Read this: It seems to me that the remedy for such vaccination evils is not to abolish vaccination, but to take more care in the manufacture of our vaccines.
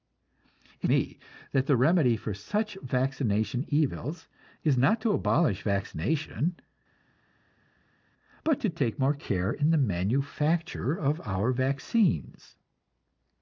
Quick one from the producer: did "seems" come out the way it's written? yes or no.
no